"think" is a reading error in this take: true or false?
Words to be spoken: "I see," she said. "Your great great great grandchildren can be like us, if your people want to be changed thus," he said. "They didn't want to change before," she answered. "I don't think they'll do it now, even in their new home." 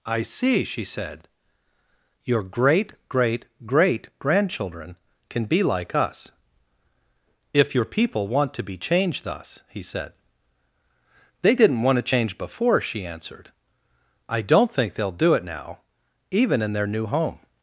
false